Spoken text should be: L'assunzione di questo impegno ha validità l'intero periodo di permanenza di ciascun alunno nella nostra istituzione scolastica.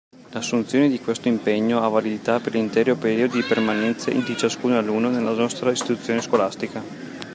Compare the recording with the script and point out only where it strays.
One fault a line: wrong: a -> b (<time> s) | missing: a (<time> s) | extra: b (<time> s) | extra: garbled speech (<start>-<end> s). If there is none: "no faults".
extra: per (2.4 s)